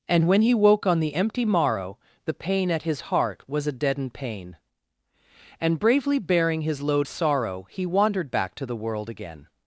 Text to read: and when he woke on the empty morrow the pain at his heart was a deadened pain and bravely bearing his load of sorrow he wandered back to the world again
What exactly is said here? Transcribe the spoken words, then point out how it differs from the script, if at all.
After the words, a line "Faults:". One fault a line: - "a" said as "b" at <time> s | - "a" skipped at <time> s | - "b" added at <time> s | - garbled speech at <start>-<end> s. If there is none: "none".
and when he woke on the empty morrow the pain at his heart was a deadened pain and bravely bearing his load sorrow he wandered back to the world again
Faults:
- "of" skipped at 7.1 s